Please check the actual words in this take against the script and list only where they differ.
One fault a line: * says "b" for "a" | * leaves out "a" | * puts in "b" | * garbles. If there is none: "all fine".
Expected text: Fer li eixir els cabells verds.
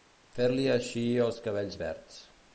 all fine